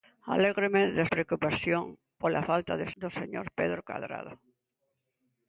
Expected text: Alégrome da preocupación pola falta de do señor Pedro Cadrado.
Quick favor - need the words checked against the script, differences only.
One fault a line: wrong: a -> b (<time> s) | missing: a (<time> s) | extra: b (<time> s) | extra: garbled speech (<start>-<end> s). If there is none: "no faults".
no faults